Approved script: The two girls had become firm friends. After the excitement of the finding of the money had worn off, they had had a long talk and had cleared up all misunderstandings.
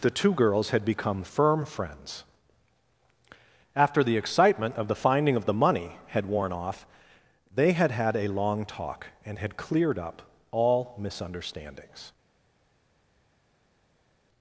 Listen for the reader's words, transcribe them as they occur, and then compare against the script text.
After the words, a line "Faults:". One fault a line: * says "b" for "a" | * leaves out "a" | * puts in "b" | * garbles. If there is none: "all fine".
The two girls had become firm friends. After the excitement of the finding of the money had worn off, they had had a long talk and had cleared up all misunderstandings.
Faults:
all fine